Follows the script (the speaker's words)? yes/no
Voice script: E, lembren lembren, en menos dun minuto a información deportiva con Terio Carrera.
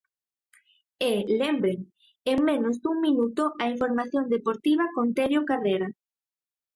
no